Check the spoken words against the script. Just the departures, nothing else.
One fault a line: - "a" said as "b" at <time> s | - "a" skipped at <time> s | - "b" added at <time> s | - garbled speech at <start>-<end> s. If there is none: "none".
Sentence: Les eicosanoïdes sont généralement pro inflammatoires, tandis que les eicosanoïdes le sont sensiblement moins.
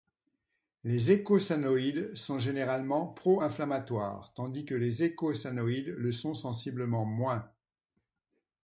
none